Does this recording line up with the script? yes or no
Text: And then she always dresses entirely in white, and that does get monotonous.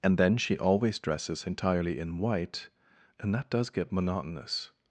yes